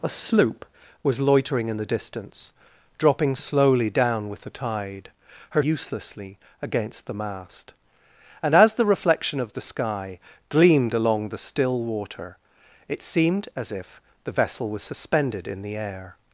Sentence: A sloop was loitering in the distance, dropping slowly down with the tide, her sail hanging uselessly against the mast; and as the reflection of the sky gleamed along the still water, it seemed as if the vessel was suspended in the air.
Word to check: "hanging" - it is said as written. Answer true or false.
false